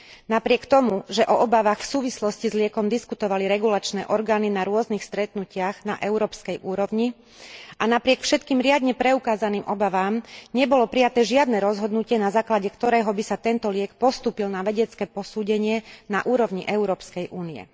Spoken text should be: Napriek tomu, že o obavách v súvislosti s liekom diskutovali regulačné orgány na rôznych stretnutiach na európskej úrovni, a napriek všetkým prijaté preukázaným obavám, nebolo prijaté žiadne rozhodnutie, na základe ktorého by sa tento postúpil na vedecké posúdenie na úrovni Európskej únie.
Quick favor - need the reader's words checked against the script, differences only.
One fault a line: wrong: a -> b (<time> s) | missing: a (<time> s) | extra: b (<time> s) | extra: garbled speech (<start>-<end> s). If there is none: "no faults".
wrong: prijaté -> riadne (8.6 s)
extra: liek (13.7 s)